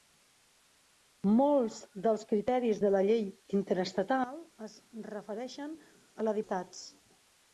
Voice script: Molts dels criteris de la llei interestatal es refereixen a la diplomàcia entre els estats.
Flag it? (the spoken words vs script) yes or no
yes